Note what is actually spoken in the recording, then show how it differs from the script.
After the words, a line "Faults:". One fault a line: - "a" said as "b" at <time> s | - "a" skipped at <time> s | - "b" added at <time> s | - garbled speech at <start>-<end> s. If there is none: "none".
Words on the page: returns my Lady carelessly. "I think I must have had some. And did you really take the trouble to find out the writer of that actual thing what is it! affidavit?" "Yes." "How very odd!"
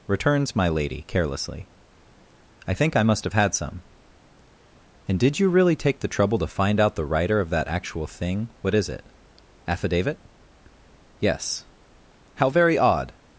returns my Lady carelessly. "I think I must have had some. And did you really take the trouble to find out the writer of that actual thing what is it! affidavit?" "Yes." "How very odd!"
Faults:
none